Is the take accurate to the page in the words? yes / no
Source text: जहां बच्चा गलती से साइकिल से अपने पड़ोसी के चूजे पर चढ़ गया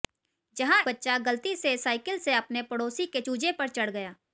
yes